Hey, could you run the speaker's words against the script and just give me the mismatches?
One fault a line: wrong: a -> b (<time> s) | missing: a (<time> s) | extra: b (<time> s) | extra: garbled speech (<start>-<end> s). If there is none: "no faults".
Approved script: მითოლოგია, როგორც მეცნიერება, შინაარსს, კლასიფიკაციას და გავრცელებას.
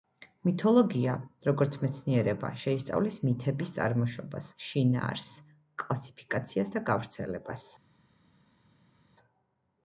extra: შეისწავლის მითების წარმოშობას (2.6 s)